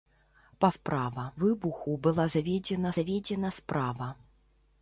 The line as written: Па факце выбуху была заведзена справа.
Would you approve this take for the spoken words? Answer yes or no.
no